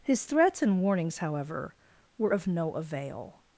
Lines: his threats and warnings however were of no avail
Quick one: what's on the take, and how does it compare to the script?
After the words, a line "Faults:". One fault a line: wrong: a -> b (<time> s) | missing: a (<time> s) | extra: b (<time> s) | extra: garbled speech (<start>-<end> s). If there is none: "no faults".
his threats and warnings however were of no avail
Faults:
no faults